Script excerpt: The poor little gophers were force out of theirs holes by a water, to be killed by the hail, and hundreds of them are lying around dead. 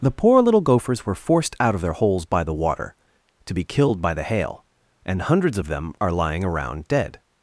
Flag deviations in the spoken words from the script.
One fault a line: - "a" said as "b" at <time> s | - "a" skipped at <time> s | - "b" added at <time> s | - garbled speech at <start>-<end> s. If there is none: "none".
- "force" said as "forced" at 1.1 s
- "theirs" said as "their" at 1.8 s
- "a" said as "the" at 2.4 s